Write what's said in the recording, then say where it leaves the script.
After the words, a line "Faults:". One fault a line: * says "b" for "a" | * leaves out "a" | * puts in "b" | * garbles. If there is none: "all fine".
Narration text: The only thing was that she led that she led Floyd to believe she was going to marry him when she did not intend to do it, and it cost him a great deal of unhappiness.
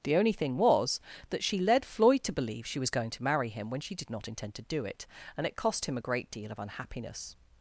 The only thing was that she led Floyd to believe she was going to marry him when she did not intend to do it, and it cost him a great deal of unhappiness.
Faults:
* leaves out "that she led"